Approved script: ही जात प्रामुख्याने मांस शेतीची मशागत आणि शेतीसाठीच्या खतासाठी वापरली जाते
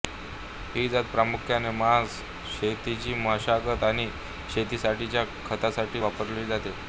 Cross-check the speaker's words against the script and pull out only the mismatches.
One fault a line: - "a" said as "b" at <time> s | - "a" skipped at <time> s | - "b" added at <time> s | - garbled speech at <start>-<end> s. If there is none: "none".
none